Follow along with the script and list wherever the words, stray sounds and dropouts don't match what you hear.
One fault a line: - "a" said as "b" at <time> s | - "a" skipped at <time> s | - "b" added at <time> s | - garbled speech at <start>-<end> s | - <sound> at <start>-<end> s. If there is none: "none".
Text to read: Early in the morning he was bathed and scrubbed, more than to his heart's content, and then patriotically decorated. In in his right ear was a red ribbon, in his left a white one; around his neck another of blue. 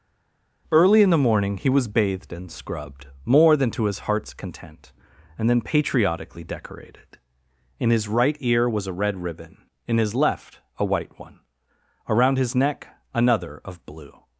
- "in" skipped at 7.9 s